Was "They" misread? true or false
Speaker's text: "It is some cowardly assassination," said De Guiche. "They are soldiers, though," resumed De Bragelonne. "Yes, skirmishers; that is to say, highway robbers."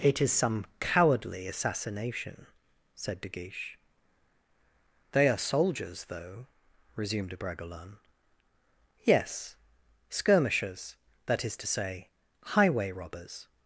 false